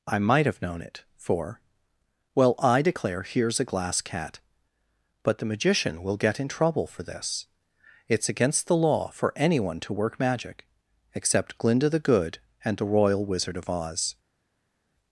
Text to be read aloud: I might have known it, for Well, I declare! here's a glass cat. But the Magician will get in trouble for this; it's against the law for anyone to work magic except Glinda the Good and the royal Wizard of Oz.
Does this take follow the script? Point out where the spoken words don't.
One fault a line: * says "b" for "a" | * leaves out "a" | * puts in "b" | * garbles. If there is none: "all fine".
all fine